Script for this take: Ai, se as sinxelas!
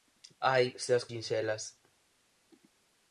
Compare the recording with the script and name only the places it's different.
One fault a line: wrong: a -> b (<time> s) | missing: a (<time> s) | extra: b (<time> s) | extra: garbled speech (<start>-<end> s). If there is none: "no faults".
no faults